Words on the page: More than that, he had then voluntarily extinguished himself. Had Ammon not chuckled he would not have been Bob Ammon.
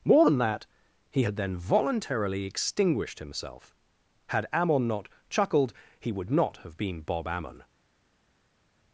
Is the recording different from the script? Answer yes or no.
no